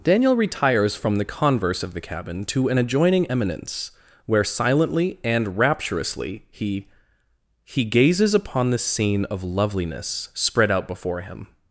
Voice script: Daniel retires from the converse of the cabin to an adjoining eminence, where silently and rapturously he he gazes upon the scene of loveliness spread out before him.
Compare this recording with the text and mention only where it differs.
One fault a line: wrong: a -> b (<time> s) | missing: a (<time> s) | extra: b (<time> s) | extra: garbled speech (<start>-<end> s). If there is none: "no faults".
no faults